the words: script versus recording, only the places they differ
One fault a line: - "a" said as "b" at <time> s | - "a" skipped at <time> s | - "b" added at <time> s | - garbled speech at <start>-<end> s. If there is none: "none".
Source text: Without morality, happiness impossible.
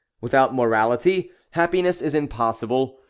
- "is" added at 2.0 s